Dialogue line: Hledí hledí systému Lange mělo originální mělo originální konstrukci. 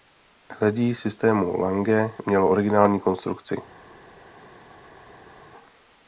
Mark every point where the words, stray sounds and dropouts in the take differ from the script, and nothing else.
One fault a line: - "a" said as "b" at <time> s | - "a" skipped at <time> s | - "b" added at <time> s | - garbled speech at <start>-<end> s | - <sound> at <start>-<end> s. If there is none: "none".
- "hledí" skipped at 0.9 s
- "mělo originální" skipped at 3.0 s